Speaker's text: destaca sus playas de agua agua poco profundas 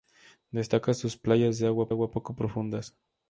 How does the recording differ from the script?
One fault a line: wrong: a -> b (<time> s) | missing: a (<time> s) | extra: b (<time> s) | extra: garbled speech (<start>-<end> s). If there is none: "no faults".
no faults